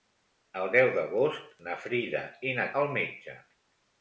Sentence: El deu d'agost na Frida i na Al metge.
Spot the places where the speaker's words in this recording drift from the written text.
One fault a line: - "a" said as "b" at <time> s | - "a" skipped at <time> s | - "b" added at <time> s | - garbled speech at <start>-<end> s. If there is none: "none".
none